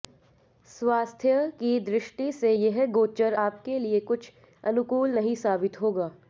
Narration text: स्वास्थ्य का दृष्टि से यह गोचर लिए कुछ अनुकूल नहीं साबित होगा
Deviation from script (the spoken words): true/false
true